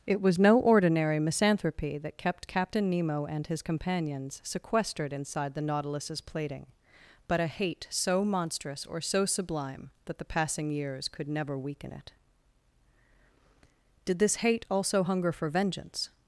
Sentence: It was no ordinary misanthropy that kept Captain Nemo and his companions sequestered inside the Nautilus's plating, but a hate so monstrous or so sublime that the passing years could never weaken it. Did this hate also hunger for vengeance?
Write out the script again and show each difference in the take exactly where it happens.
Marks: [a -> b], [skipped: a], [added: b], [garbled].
It was no ordinary misanthropy that kept Captain Nemo and his companions sequestered inside the Nautilus's plating, but a hate so monstrous or so sublime that the passing years could never weaken it. Did this hate also hunger for vengeance?